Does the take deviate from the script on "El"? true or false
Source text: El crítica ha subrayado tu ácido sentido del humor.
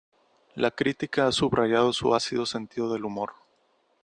true